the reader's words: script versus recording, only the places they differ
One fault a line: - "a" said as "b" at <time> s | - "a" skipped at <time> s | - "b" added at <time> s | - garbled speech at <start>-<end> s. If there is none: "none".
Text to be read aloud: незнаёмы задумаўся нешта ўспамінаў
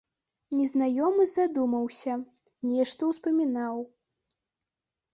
none